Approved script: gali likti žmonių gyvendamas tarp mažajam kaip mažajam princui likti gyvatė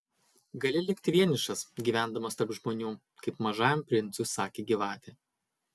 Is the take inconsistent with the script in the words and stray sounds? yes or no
yes